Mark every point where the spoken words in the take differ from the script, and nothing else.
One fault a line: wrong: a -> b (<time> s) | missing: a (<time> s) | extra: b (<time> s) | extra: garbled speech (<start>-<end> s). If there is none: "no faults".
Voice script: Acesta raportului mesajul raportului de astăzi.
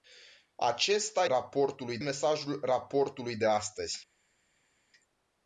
no faults